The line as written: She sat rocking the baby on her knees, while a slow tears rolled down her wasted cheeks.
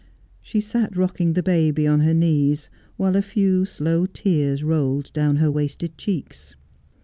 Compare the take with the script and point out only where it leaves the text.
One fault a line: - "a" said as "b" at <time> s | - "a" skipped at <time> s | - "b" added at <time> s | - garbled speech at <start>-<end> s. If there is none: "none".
- "few" added at 3.2 s